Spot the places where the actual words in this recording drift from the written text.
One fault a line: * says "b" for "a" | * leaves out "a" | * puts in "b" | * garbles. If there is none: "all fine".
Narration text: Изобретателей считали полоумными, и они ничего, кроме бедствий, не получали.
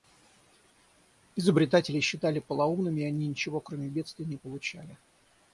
all fine